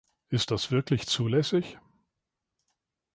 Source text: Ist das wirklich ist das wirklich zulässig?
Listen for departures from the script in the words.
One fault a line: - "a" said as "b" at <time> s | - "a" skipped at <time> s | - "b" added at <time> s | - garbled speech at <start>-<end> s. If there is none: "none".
- "ist das wirklich" skipped at 1.1 s